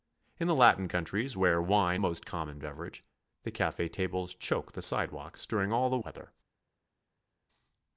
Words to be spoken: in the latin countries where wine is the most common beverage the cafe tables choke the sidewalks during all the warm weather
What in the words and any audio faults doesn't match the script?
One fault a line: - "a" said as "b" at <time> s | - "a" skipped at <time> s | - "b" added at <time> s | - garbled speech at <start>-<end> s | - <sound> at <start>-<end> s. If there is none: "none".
- "is the" skipped at 2.0 s
- "warm" skipped at 6.0 s